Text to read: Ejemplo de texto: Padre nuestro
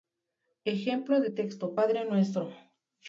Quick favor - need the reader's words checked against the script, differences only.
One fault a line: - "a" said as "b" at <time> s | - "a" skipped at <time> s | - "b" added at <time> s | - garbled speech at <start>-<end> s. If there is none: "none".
none